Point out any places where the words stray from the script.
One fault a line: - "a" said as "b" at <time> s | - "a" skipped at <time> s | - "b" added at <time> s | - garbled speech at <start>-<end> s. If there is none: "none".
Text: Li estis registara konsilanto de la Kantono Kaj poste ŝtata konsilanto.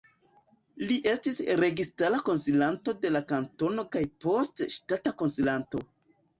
none